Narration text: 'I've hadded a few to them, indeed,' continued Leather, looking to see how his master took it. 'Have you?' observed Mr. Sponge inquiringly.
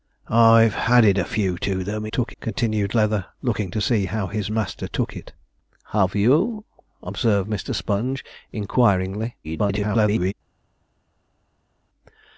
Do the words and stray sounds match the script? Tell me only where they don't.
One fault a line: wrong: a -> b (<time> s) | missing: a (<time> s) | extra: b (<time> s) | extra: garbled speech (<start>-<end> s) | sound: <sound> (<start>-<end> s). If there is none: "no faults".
wrong: indeed -> took (2.1 s)
extra: garbled speech (9.4-10.3 s)